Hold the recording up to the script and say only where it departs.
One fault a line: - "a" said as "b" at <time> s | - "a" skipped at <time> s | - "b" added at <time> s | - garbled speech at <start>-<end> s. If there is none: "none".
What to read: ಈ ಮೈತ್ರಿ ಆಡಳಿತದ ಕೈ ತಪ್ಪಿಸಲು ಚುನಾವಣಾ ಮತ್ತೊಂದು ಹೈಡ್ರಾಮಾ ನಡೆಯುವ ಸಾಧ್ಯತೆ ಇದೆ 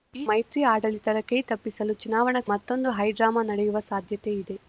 none